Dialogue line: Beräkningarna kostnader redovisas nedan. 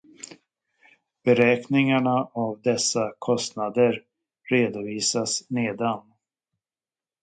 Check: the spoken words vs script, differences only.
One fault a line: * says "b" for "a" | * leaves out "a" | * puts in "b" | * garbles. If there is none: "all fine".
* puts in "av dessa"